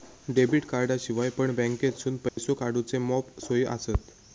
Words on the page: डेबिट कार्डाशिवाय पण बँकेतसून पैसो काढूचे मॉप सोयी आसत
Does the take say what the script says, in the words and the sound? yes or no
no